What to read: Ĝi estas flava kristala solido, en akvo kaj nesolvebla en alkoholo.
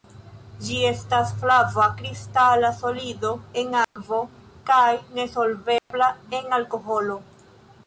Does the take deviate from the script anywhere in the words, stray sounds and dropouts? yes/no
yes